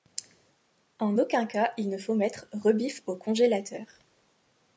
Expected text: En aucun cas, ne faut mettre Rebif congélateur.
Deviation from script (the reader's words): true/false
true